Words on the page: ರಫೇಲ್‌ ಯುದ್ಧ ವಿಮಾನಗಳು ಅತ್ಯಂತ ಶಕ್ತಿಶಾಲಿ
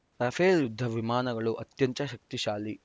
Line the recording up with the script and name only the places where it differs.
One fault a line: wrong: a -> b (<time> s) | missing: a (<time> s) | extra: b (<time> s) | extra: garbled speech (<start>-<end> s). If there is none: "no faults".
no faults